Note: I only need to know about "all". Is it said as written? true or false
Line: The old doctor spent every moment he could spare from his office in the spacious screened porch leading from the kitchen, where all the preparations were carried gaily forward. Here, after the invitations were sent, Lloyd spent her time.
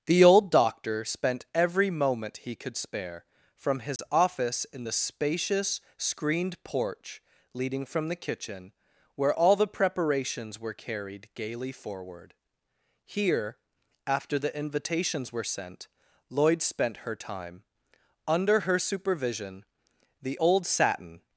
true